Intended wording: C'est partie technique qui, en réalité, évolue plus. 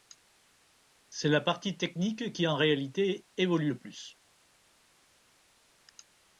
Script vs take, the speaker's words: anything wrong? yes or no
yes